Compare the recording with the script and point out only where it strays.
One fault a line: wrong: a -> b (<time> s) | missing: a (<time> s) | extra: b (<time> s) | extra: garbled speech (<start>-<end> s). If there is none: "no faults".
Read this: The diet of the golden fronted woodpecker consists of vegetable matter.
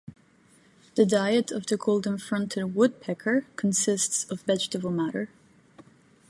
no faults